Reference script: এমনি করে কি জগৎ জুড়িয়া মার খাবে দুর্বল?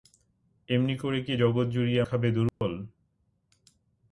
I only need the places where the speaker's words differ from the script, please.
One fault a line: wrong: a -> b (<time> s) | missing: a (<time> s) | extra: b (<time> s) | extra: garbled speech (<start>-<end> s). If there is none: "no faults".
missing: মার (2.0 s)